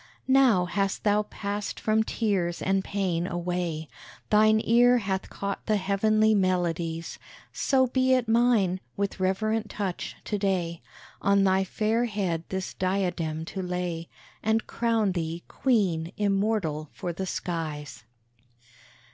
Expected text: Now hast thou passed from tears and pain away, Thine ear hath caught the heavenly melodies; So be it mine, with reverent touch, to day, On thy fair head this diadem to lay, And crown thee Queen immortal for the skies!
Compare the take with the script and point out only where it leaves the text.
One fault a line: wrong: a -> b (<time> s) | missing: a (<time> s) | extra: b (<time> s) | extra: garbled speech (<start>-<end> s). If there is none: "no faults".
no faults